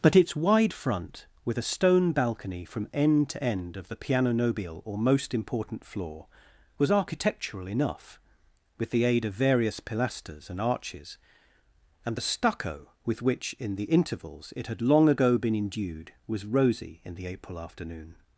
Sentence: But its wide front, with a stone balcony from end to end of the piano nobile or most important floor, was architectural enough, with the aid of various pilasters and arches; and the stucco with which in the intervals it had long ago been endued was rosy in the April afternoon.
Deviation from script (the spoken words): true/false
false